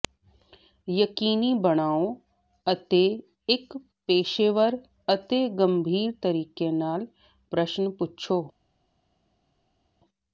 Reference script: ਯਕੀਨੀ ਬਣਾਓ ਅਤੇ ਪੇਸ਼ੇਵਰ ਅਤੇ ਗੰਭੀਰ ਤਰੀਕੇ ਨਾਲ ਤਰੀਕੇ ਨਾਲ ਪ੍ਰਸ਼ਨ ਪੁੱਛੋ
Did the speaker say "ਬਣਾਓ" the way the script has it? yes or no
yes